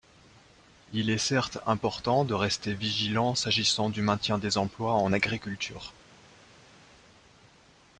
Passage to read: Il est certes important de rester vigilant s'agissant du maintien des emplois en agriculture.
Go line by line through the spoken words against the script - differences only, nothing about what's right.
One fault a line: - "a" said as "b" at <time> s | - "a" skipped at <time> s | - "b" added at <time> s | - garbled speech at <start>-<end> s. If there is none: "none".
none